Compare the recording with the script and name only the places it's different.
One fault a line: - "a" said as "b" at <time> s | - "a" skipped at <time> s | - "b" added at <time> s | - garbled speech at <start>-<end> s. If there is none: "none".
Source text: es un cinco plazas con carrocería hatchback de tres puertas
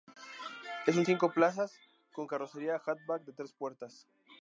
none